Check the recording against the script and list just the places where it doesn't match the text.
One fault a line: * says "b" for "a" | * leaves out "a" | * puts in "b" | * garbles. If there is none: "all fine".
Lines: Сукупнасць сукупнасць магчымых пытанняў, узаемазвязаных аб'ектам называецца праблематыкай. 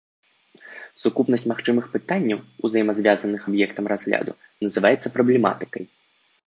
* leaves out "сукупнасць"
* puts in "разгляду"